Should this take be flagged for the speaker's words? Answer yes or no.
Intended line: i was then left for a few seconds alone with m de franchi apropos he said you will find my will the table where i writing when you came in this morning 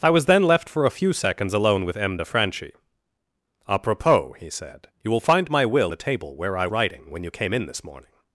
no